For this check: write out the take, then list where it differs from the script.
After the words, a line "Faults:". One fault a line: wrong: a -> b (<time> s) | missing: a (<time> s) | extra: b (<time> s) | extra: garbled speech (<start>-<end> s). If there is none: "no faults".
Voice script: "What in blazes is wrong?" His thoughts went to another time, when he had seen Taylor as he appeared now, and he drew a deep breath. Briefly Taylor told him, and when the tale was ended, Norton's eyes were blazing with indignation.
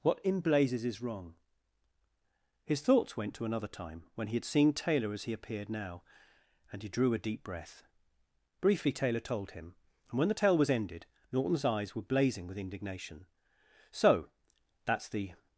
"What in blazes is wrong?" His thoughts went to another time, when he had seen Taylor as he appeared now, and he drew a deep breath. Briefly Taylor told him, and when the tale was ended, Norton's eyes were blazing with indignation. "So, that's the
Faults:
extra: So that's the (13.9 s)